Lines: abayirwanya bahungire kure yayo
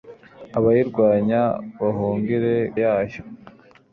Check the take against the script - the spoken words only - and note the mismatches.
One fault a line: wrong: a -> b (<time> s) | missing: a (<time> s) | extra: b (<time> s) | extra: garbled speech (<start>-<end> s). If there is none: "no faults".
missing: kure (2.5 s)